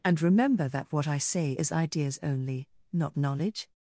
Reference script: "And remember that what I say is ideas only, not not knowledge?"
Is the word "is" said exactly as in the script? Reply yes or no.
yes